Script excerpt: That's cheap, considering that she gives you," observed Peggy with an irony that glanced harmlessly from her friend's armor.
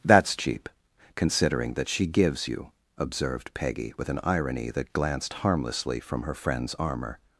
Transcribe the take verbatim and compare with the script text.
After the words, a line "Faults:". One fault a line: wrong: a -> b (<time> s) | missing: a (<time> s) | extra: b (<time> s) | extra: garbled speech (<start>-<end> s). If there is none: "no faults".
That's cheap, considering that she gives you," observed Peggy with an irony that glanced harmlessly from her friend's armor.
Faults:
no faults